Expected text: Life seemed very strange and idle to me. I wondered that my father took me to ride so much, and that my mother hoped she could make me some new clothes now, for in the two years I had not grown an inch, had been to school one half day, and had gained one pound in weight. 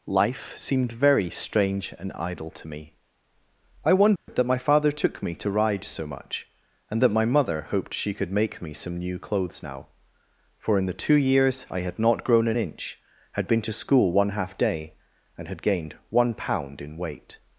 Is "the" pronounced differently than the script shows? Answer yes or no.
no